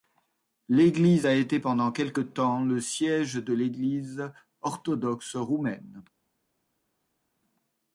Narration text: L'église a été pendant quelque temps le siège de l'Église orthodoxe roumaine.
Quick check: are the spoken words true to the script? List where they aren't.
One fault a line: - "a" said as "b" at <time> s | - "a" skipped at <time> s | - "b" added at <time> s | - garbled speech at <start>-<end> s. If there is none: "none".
none